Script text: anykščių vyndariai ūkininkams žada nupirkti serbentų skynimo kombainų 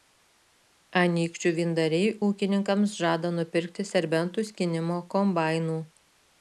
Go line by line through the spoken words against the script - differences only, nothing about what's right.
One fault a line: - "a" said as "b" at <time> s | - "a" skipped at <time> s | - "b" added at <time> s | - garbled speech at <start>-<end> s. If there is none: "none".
none